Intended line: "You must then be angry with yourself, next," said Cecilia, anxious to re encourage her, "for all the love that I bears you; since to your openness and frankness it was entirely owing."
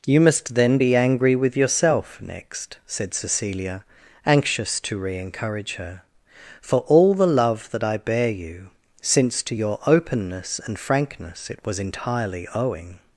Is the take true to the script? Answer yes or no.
no